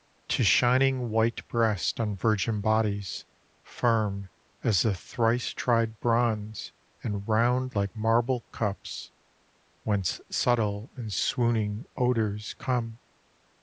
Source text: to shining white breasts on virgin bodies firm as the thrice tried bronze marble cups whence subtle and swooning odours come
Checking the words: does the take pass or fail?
fail